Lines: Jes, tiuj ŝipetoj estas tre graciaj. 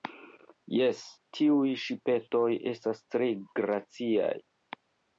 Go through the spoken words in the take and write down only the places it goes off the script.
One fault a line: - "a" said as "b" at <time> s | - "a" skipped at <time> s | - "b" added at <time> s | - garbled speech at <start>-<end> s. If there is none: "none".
none